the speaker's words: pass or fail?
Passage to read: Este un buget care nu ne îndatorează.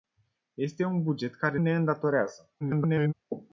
fail